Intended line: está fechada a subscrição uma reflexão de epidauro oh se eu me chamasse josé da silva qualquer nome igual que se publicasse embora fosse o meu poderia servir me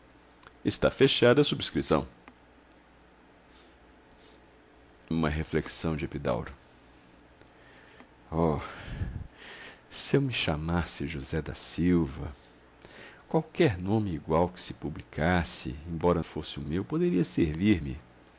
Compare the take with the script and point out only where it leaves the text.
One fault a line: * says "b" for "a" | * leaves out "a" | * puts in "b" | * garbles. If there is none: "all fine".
all fine